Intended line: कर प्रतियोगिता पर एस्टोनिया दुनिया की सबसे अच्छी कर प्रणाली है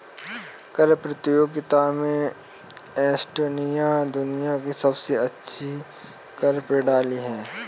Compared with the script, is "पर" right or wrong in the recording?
wrong